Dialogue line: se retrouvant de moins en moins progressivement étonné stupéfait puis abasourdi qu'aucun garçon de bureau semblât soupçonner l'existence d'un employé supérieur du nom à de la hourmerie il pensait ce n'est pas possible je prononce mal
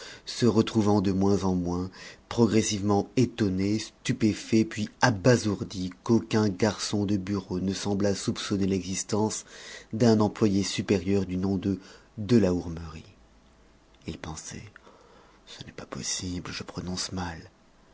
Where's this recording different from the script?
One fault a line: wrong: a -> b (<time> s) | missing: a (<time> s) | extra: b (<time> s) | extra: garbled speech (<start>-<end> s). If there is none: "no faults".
extra: ne (7.6 s)
wrong: à -> de (11.6 s)